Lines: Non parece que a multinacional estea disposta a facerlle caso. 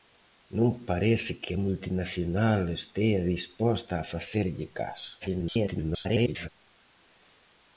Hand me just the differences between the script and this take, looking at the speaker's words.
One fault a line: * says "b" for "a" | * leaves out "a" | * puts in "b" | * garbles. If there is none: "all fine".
* garbles